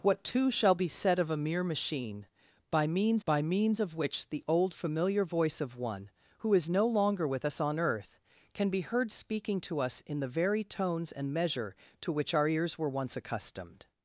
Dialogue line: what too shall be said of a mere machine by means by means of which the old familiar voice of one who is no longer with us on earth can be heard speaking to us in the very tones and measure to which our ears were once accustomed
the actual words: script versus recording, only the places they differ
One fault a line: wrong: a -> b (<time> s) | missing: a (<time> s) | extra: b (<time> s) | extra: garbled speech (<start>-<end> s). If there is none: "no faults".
no faults